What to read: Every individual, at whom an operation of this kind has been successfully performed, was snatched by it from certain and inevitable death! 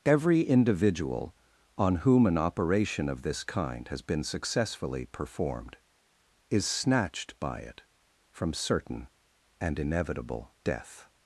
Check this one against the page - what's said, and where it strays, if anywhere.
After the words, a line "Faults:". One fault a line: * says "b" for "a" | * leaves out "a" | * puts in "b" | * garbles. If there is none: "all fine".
Every individual, on whom an operation of this kind has been successfully performed, is snatched by it from certain and inevitable death!
Faults:
* says "on" for "at"
* says "is" for "was"